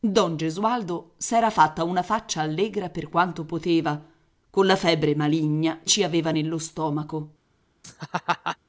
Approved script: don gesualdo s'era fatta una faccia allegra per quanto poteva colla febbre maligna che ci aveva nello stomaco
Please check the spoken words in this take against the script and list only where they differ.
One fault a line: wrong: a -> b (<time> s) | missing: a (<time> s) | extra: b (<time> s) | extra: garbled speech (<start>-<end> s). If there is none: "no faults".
missing: che (5.8 s)